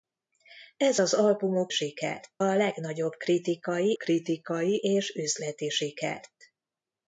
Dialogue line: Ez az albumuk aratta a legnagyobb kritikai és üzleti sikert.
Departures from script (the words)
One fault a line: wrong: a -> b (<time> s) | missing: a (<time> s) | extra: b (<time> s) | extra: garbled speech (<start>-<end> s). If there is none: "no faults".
wrong: aratta -> sikert (1.7 s)
extra: kritikai (3.9 s)